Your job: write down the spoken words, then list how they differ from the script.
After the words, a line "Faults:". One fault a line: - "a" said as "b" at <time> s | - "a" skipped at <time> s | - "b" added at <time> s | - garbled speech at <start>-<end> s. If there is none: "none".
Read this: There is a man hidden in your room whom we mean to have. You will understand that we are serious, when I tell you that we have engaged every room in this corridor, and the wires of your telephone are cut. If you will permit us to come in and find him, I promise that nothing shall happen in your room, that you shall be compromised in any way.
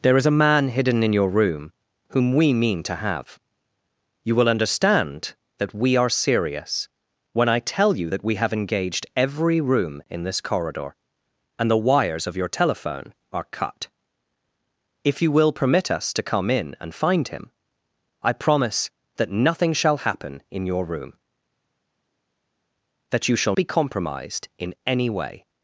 There is a man hidden in your room whom we mean to have. You will understand that we are serious, when I tell you that we have engaged every room in this corridor, and the wires of your telephone are cut. If you will permit us to come in and find him, I promise that nothing shall happen in your room, that you shall be compromised in any way.
Faults:
none